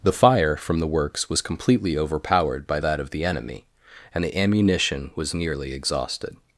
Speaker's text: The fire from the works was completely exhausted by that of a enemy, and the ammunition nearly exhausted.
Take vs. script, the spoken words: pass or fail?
fail